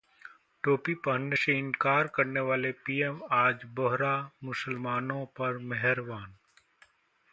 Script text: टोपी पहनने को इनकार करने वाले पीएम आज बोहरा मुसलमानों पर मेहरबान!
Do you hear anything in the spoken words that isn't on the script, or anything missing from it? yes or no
yes